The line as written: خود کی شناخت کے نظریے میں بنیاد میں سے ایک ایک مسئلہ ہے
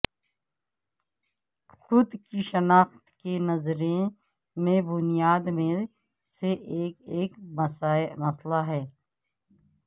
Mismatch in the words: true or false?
false